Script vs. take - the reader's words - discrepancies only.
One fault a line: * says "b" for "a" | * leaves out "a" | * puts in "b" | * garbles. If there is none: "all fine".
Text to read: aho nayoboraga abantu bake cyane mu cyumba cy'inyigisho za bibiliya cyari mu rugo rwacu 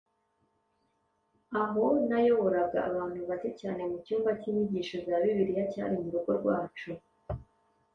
all fine